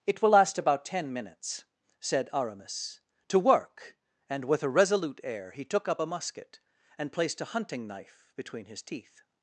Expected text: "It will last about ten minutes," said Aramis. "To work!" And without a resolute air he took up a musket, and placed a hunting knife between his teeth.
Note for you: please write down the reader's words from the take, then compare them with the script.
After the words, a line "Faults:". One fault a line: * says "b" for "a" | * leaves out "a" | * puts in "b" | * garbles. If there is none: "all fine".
"It will last about ten minutes," said Aramis. "To work!" And with a resolute air he took up a musket, and placed a hunting knife between his teeth.
Faults:
* says "with" for "without"